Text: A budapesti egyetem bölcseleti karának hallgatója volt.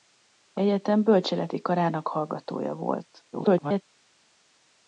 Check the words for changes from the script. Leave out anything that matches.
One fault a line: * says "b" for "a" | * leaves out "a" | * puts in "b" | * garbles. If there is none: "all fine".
* leaves out "budapesti"
* garbles